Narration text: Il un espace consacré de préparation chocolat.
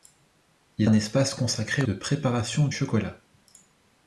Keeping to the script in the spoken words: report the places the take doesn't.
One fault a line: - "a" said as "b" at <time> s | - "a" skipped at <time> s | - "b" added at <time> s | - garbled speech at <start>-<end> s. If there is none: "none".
none